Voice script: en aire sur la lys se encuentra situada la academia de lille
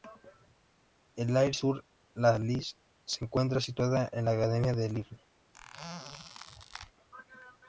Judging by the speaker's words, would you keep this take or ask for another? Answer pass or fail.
pass